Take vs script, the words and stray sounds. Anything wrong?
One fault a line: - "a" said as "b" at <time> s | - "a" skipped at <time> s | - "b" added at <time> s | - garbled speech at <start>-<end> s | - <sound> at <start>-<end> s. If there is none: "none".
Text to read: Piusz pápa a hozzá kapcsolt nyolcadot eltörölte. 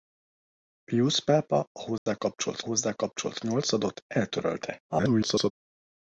- dropout at 2.0-2.1 s
- "hozzá kapcsolt" added at 2.6 s
- garbled speech at 4.9-5.5 s